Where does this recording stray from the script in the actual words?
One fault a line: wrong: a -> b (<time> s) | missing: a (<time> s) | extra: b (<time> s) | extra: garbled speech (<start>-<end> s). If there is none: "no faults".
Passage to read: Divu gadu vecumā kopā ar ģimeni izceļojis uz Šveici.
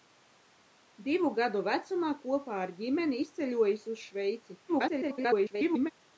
extra: garbled speech (4.7-5.9 s)